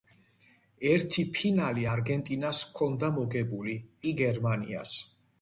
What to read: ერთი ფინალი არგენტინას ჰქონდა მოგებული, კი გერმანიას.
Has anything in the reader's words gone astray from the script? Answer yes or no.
no